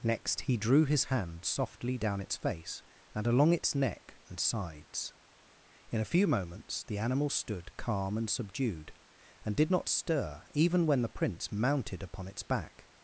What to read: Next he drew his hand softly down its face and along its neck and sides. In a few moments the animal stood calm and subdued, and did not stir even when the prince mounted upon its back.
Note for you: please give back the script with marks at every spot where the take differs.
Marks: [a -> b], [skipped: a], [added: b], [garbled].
Next he drew his hand softly down its face and along its neck and sides. In a few moments the animal stood calm and subdued, and did not stir even when the prince mounted upon its back.